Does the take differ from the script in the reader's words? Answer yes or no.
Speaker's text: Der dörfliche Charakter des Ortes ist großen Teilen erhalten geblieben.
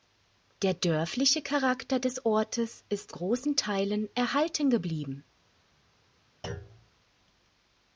no